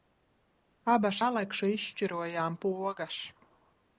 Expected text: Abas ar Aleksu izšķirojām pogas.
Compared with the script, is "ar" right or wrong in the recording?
wrong